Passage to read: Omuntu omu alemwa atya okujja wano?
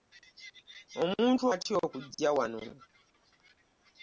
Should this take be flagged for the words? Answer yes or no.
yes